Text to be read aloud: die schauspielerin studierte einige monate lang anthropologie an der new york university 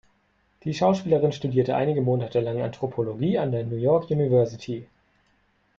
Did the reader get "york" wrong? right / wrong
right